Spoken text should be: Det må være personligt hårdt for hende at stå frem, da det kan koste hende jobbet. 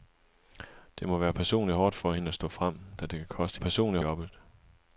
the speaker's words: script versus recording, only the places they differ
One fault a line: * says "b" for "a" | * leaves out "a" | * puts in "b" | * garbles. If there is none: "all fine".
* says "personligt" for "hende"